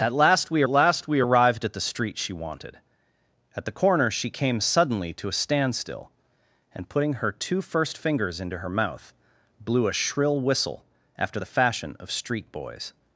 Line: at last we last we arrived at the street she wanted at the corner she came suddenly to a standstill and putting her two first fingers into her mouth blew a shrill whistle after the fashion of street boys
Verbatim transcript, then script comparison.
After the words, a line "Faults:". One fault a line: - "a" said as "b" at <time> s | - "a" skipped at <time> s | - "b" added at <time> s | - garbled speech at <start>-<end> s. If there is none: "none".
at last we last we arrived at the street she wanted at the corner she came suddenly to a standstill and putting her two first fingers into her mouth blew a shrill whistle after the fashion of street boys
Faults:
none